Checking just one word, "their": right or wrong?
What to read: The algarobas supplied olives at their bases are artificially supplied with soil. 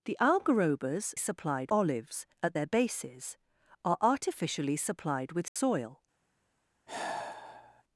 right